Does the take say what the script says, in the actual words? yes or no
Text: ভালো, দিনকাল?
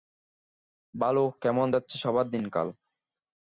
no